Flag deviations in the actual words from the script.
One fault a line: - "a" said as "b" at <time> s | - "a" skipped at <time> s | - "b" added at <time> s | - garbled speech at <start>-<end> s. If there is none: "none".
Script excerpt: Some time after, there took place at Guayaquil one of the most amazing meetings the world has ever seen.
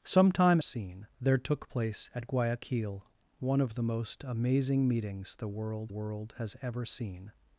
- "after" said as "seen" at 0.6 s
- "world" added at 5.9 s